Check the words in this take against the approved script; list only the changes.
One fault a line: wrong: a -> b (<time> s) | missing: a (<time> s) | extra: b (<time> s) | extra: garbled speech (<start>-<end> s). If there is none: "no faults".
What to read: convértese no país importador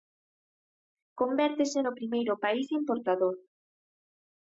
extra: primeiro (2.0 s)